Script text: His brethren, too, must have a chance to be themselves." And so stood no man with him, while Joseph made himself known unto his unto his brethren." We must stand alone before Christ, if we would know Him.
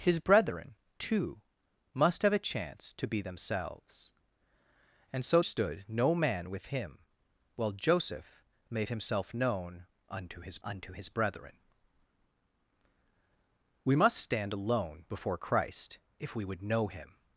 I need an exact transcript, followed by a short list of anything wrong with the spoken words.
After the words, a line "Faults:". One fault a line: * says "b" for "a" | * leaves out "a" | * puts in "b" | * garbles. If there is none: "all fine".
His brethren, too, must have a chance to be themselves." And so stood no man with him, while Joseph made himself known unto his unto his brethren." We must stand alone before Christ, if we would know Him.
Faults:
all fine